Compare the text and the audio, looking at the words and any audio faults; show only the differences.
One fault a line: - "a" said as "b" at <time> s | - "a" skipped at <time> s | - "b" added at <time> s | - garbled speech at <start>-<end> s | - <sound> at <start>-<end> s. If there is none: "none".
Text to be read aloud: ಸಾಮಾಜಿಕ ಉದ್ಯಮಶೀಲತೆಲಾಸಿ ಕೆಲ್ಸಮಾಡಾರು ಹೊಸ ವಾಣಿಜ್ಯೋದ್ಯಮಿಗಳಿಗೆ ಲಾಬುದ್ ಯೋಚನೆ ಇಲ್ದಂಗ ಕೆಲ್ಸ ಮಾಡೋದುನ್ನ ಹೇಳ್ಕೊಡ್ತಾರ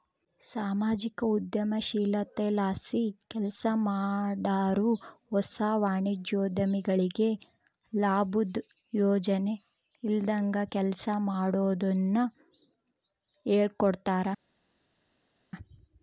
none